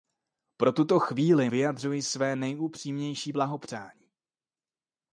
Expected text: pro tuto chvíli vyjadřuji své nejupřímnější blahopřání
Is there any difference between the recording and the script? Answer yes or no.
no